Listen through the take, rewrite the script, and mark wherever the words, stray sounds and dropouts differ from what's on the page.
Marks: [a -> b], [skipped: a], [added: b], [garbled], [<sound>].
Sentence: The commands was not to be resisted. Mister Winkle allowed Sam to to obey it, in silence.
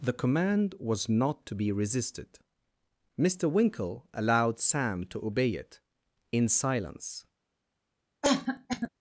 The [commands -> command] was not to be resisted. Mister Winkle allowed Sam to [skipped: to] obey it, in silence. [cough]